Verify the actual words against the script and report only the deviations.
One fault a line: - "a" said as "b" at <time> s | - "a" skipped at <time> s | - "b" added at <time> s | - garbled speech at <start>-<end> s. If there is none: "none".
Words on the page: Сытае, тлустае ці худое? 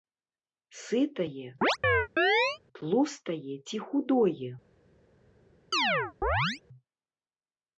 none